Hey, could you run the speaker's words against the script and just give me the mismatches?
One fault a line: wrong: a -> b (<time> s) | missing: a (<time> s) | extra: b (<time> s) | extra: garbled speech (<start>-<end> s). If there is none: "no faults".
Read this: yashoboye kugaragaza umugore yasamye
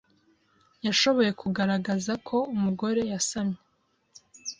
extra: ko (2.3 s)